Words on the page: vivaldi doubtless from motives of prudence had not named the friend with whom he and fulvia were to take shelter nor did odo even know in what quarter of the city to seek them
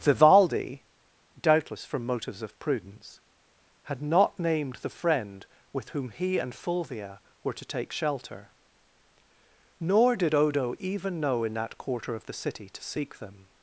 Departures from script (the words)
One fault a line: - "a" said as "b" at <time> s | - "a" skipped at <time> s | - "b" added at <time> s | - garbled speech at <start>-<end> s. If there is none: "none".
- "what" said as "that" at 11.5 s